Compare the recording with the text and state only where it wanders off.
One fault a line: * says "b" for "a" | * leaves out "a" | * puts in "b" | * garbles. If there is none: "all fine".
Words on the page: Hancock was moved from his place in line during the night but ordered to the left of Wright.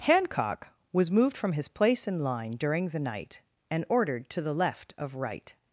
* says "and" for "but"